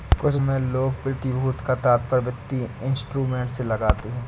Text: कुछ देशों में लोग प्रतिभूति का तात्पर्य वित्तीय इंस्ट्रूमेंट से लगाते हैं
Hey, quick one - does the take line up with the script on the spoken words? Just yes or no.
no